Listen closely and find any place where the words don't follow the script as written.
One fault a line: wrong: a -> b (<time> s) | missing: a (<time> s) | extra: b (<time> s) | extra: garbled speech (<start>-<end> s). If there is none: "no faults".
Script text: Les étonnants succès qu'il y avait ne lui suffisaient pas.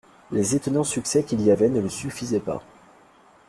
no faults